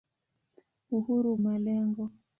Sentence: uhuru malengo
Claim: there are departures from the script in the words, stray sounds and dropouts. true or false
false